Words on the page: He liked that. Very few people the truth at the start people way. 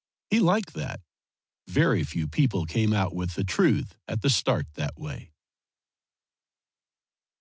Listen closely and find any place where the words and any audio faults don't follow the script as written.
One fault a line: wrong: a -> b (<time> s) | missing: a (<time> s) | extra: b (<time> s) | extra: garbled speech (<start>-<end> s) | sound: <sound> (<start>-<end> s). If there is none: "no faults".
extra: came out with (2.6 s)
wrong: people -> that (4.8 s)